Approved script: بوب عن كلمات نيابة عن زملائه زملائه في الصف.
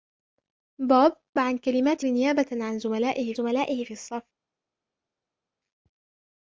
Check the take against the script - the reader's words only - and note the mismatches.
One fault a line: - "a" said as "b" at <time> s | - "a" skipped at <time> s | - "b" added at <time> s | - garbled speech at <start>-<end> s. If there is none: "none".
none